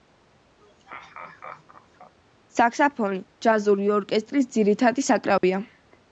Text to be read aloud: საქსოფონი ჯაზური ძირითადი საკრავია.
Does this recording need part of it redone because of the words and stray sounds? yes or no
yes